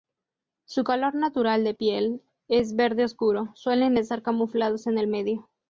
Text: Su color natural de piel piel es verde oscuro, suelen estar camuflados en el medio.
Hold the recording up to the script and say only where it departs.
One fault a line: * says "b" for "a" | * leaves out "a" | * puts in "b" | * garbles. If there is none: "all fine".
* leaves out "piel"